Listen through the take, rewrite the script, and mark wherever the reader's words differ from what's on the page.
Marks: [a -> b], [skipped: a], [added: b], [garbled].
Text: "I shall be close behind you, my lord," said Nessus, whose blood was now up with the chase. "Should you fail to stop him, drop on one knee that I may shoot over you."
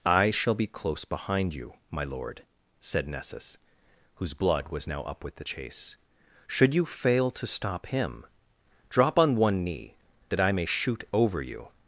"I shall be close behind you, my lord," said Nessus, whose blood was now up with the chase. "Should you fail to stop him, drop on one knee that I may shoot over you."